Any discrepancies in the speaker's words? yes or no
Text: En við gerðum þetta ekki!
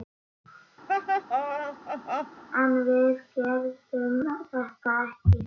no